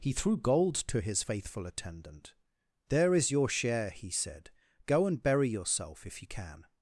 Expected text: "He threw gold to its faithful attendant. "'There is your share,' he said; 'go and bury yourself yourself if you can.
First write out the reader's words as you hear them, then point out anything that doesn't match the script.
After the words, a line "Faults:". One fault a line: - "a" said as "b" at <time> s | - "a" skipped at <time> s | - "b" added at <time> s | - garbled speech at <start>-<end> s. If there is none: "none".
"He threw gold to his faithful attendant. "'There is your share,' he said; 'go and bury yourself if you can.
Faults:
- "its" said as "his" at 1.0 s
- "yourself" skipped at 6.1 s